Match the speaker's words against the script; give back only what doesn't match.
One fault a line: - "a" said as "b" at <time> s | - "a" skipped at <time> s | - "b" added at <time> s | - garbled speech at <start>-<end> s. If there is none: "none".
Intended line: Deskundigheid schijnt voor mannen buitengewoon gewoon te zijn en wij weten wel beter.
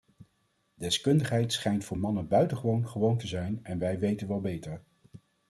none